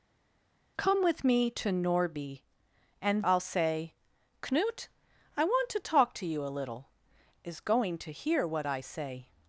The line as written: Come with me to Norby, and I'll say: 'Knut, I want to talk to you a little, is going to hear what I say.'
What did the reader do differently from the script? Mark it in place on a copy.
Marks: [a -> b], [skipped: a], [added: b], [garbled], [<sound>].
Come with me to Norby, and I'll say: 'Knut, I want to talk to you a little, is going to hear what I say.'